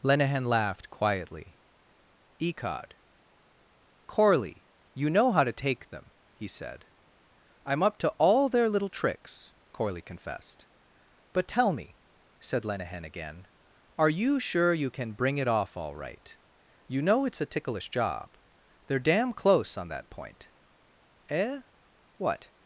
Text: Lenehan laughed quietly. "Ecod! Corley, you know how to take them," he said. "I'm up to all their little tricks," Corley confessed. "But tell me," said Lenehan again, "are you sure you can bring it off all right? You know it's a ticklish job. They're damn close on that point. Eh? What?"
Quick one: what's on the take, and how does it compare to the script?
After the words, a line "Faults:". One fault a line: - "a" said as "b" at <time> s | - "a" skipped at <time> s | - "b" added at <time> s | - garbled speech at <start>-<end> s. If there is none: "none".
Lenehan laughed quietly. "Ecod! Corley, you know how to take them," he said. "I'm up to all their little tricks," Corley confessed. "But tell me," said Lenehan again, "are you sure you can bring it off all right? You know it's a ticklish job. They're damn close on that point. Eh? What?"
Faults:
none